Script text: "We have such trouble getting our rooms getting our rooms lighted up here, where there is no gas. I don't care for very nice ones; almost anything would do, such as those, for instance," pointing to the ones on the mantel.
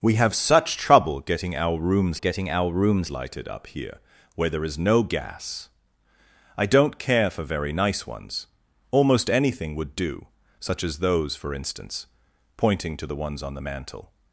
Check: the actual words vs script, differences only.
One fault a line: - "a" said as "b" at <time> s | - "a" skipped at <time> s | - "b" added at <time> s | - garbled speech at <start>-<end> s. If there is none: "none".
none